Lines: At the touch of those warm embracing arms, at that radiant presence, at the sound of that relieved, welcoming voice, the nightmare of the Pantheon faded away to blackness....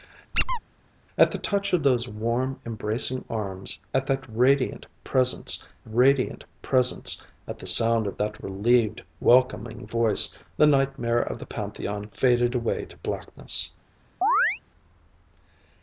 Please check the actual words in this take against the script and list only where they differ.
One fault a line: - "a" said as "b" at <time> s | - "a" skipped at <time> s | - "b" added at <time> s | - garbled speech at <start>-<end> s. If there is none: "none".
- "radiant presence" added at 5.9 s